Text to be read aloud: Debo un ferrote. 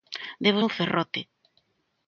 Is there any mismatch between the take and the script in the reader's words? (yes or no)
no